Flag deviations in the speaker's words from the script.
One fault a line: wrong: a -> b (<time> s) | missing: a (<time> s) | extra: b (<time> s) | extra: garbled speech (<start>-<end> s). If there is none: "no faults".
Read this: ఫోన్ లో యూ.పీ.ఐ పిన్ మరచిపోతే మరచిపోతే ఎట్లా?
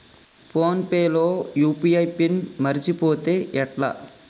extra: పే (0.8 s)
missing: మరచిపోతే (3.3 s)